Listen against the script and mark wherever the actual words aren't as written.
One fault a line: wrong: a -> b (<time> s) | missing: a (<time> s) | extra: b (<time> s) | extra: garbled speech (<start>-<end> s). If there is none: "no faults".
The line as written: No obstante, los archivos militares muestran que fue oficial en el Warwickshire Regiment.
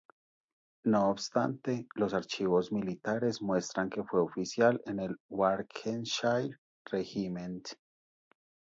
no faults